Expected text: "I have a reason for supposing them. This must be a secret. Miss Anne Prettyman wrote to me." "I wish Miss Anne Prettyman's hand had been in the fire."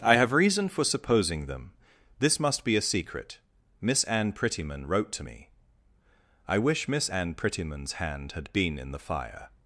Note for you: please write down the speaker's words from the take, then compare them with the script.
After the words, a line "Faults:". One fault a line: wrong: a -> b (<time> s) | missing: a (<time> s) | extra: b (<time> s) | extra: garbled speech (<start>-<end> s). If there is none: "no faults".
"I have reason for supposing them. This must be a secret. Miss Anne Prettyman wrote to me." "I wish Miss Anne Prettyman's hand had been in the fire."
Faults:
missing: a (0.3 s)